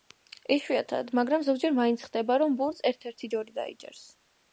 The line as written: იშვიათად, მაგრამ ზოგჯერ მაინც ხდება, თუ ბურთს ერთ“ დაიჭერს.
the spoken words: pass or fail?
fail